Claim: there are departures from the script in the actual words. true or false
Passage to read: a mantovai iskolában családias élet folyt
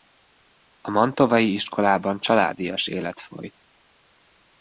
false